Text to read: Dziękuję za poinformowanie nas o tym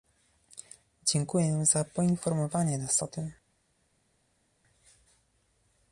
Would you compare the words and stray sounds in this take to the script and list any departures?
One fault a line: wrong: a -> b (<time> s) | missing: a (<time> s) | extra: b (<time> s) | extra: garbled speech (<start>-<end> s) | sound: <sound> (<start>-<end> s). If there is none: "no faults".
no faults